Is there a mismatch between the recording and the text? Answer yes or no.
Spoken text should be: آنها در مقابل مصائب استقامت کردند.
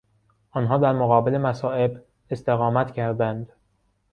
no